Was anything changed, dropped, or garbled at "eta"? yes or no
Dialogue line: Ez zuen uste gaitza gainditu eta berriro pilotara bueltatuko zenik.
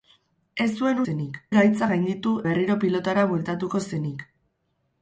yes